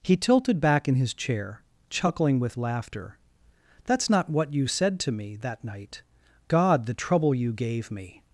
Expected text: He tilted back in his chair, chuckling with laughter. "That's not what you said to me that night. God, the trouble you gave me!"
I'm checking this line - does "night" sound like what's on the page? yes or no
yes